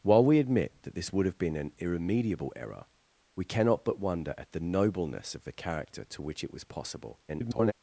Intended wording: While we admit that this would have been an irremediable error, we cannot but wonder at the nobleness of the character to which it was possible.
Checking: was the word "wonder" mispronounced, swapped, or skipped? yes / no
no